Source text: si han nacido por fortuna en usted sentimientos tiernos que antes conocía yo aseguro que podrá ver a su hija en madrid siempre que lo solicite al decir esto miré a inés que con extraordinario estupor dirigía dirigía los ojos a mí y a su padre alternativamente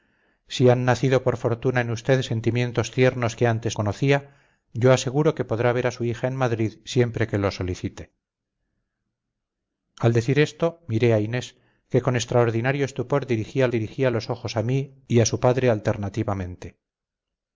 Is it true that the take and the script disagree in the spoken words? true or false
false